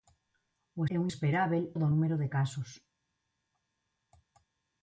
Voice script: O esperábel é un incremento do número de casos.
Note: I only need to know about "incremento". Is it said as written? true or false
false